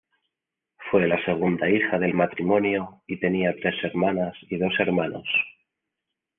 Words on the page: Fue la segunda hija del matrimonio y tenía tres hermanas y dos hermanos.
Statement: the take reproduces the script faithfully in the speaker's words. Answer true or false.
true